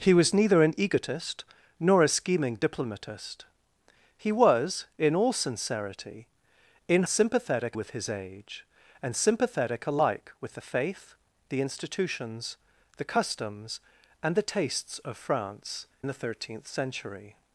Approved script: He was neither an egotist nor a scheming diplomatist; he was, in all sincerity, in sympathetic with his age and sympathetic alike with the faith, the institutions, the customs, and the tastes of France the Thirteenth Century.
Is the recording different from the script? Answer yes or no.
no